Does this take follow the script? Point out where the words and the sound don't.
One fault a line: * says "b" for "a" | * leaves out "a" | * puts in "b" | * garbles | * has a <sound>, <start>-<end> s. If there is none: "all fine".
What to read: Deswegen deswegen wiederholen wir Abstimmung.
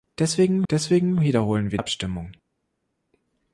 all fine